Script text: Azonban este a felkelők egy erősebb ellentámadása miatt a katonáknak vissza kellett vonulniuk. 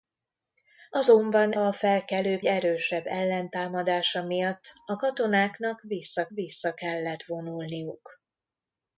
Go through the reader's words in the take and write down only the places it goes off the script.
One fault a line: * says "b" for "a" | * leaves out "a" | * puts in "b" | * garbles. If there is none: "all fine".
* leaves out "este"
* leaves out "egy"
* puts in "vissza"